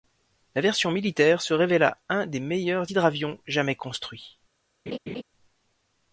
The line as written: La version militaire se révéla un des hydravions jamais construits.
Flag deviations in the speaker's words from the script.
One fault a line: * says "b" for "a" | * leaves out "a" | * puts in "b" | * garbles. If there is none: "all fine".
* puts in "meilleurs"